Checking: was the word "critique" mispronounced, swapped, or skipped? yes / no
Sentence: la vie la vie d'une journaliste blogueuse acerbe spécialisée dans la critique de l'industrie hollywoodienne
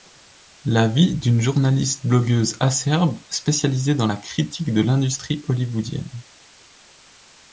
no